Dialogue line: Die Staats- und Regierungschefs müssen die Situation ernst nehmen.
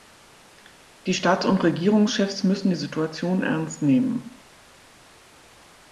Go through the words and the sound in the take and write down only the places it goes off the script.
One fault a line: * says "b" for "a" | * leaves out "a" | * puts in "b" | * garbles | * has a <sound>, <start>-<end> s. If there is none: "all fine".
all fine